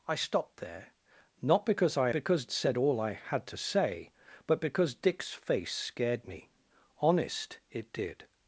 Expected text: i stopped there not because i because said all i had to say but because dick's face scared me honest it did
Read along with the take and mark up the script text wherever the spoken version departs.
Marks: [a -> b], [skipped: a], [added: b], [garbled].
i stopped there not because i because said all i had to say but because dick's face scared me honest it did